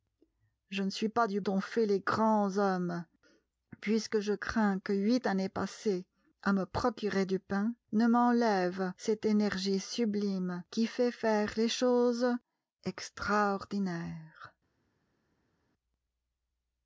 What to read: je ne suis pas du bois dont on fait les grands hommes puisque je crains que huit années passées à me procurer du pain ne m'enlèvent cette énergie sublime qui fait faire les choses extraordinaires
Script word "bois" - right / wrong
wrong